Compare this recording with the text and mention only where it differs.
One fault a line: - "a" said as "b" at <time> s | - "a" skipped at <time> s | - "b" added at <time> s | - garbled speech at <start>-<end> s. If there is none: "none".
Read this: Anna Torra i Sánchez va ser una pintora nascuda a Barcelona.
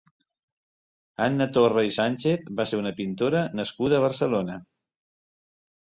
none